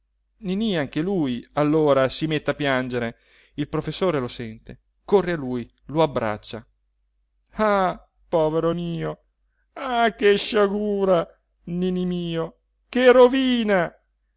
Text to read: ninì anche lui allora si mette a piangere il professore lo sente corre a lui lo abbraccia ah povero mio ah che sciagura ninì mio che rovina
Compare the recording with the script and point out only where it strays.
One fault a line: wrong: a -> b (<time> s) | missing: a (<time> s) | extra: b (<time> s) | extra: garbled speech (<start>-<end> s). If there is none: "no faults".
no faults